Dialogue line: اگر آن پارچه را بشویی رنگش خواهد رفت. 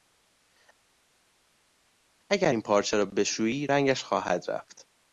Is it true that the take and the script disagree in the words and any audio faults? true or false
true